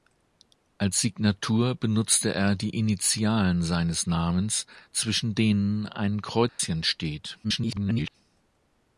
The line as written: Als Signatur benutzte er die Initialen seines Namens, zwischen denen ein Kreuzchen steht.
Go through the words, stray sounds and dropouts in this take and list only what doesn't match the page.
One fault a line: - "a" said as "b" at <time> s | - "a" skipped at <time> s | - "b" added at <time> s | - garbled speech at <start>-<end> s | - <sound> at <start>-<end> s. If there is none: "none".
- dropout at 6.5-6.6 s
- garbled speech at 7.4-8.2 s